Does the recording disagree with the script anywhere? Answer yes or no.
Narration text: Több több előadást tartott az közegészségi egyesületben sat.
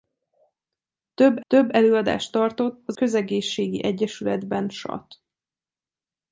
no